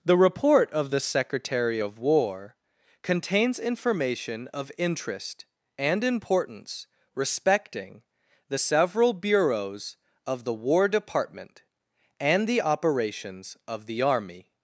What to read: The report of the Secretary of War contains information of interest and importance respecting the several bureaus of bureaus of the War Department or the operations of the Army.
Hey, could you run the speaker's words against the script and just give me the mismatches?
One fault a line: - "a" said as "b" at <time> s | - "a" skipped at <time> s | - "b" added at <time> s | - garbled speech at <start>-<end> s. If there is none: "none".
- "bureaus of" skipped at 10.4 s
- "or" said as "and" at 12.2 s